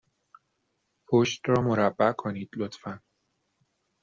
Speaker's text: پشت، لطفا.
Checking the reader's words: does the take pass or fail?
fail